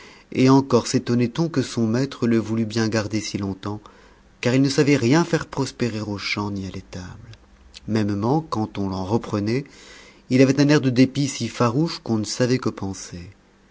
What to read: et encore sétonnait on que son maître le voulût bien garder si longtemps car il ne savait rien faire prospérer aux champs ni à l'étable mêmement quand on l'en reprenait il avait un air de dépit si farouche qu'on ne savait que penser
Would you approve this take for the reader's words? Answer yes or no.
yes